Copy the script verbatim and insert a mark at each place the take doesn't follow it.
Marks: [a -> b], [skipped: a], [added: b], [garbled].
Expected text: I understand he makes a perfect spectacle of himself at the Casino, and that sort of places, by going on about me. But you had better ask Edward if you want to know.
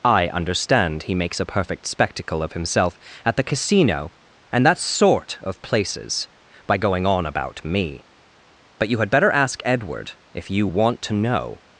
I understand he makes a perfect spectacle of himself at the Casino, and that sort of places, by going on about me. But you had better ask Edward if you want to know.